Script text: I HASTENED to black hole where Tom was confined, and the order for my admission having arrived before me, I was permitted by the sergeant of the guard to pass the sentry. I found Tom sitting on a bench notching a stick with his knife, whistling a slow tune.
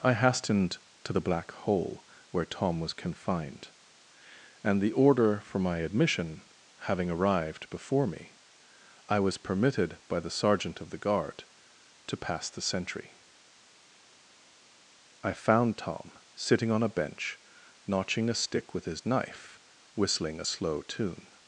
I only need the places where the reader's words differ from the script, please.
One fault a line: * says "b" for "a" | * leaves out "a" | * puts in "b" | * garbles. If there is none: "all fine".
* puts in "the"